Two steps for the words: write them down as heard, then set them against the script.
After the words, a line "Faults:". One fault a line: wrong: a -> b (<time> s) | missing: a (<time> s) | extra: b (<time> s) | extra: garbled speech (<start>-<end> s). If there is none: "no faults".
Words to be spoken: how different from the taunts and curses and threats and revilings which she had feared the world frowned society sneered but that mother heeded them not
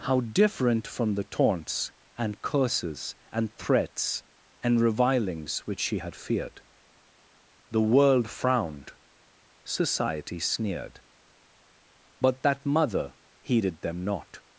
how different from the taunts and curses and threats and revilings which she had feared the world frowned society sneered but that mother heeded them not
Faults:
no faults